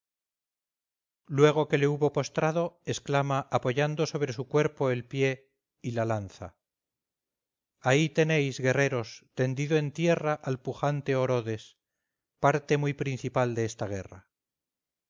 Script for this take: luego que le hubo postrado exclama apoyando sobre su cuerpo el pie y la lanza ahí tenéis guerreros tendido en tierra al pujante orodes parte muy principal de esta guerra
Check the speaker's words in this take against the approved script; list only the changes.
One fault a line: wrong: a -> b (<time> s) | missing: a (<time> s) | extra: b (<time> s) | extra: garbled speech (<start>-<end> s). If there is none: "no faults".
no faults